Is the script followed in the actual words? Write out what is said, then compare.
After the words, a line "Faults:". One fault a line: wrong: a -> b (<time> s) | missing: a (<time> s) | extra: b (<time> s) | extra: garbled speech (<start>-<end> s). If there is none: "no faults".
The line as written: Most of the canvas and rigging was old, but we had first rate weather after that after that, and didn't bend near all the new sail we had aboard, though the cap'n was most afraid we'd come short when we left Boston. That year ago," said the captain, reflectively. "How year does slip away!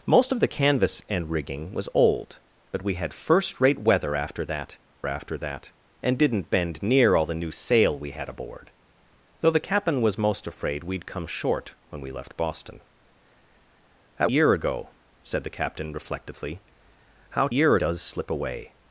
Most of the canvas and rigging was old, but we had first rate weather after that after that, and didn't bend near all the new sail we had aboard, though the cap'n was most afraid we'd come short when we left Boston. That year ago," said the captain, reflectively. "How year does slip away!
Faults:
no faults